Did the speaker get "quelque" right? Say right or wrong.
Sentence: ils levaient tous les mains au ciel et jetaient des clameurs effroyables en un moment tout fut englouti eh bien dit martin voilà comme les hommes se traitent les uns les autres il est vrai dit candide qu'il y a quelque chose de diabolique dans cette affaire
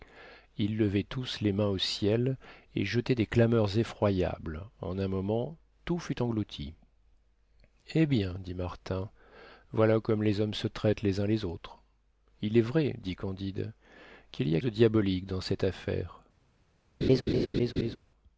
wrong